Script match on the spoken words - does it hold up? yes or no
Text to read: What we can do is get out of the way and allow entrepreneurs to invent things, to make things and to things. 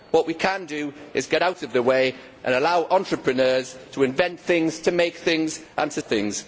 yes